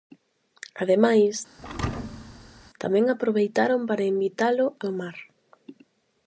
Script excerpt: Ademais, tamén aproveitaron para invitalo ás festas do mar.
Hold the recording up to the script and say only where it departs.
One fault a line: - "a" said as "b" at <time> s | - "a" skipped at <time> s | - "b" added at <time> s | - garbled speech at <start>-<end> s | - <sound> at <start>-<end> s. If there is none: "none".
- thud at 1.6-2.7 s
- "ás festas" skipped at 4.7 s